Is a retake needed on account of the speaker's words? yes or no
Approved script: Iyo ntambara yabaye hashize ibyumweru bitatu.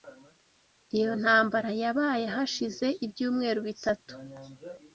no